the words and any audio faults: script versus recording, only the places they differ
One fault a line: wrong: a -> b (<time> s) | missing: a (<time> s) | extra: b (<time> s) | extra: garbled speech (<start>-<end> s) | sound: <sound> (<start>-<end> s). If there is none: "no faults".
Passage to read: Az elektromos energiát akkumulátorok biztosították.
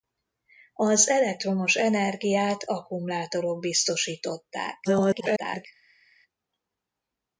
extra: garbled speech (4.8-5.7 s)